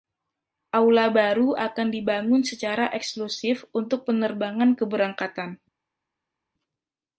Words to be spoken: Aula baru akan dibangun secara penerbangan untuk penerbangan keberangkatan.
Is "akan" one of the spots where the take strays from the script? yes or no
no